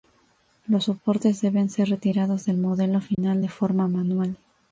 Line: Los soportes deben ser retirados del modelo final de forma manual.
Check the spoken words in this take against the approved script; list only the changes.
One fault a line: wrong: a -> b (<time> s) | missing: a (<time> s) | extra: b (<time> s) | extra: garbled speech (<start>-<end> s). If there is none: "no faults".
no faults